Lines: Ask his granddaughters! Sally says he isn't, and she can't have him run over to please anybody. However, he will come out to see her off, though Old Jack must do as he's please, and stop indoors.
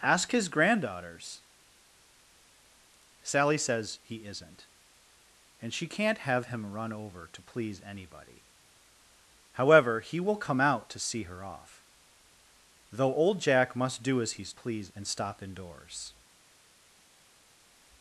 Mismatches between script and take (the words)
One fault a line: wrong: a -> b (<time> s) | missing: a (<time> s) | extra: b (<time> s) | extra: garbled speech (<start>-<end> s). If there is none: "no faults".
no faults